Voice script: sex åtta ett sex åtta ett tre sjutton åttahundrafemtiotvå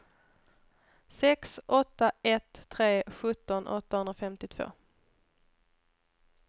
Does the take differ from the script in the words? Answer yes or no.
yes